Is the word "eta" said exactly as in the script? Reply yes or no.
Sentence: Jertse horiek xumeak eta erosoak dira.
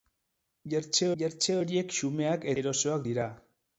no